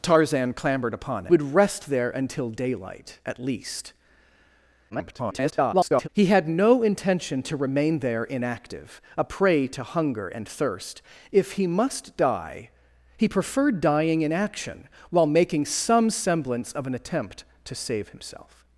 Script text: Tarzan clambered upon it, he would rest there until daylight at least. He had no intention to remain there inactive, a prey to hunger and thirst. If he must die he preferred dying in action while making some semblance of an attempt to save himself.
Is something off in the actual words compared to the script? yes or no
yes